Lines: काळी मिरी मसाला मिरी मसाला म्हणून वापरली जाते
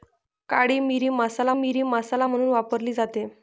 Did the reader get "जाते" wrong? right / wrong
right